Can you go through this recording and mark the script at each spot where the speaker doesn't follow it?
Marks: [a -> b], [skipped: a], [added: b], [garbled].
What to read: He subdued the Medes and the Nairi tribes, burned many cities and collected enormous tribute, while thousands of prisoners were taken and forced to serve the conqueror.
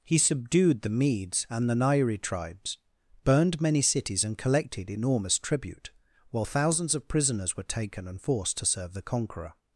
He subdued the Medes and the Nairi tribes, burned many cities and collected enormous tribute, while thousands of prisoners were taken and forced to serve the conqueror.